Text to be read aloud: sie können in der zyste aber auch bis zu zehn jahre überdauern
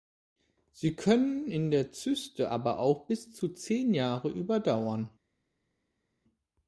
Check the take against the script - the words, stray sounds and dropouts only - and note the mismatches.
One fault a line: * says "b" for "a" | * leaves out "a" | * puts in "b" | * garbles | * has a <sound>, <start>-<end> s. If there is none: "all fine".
all fine